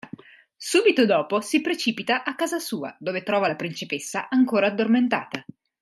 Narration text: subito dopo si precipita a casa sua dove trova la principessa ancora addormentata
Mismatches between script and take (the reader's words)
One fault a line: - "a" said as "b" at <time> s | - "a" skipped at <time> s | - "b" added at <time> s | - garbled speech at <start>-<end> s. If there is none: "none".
none